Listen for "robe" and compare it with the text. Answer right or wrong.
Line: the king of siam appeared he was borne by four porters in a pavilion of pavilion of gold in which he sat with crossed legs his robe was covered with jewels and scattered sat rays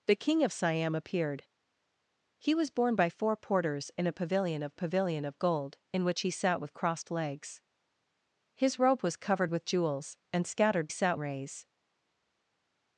right